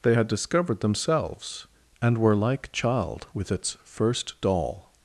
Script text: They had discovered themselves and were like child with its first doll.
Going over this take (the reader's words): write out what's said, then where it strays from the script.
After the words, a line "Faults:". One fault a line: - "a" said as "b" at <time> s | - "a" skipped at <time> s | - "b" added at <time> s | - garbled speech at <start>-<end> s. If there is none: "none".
They had discovered themselves and were like child with its first doll.
Faults:
none